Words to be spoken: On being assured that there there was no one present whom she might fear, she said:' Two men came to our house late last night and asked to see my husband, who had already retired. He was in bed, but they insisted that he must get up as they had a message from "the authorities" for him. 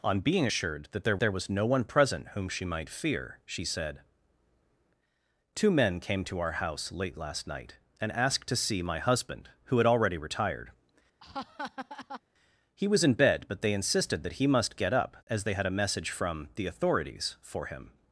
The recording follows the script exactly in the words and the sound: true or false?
false